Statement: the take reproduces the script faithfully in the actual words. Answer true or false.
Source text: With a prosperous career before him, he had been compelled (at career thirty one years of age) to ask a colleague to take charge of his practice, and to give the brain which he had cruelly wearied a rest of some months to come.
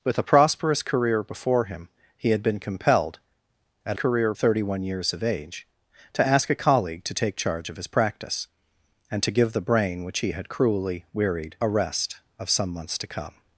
true